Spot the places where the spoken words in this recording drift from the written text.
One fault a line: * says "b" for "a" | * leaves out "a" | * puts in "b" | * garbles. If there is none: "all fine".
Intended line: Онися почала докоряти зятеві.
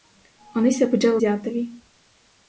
* leaves out "докоряти"